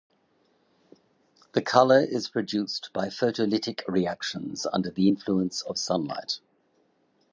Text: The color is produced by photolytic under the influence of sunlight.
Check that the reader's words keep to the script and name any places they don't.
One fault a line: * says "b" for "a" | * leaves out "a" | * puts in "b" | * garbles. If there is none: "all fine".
* puts in "reactions"